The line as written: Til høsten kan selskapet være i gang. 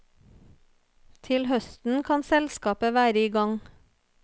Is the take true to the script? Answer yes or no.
yes